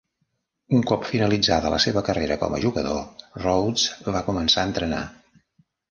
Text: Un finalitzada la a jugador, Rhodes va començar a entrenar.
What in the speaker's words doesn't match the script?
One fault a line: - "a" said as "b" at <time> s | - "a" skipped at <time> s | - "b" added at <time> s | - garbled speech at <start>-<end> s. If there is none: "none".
- "cop" added at 0.9 s
- "seva carrera com" added at 1.9 s